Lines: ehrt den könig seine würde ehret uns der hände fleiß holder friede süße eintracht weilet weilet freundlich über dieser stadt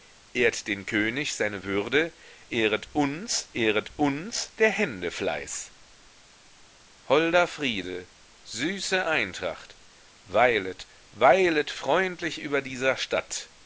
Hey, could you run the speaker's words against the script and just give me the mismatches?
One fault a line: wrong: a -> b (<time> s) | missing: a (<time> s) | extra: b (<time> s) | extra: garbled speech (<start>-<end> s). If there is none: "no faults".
extra: ehret uns (3.5 s)